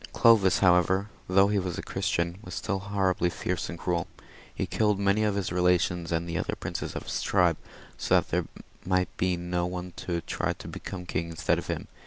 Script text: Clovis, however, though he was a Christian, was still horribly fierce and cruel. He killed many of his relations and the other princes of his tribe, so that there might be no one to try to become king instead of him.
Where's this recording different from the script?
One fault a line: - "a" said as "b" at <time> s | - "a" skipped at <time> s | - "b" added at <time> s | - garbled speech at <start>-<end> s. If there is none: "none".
none